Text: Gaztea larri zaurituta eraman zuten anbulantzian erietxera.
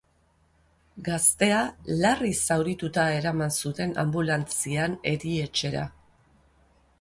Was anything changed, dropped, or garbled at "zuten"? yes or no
no